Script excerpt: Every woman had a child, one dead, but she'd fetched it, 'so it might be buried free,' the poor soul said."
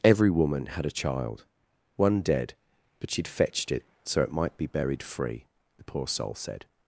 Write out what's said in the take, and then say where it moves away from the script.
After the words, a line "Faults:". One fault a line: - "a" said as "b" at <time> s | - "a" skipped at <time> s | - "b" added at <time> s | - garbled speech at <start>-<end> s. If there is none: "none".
Every woman had a child, one dead, but she'd fetched it, 'so it might be buried free,' the poor soul said."
Faults:
none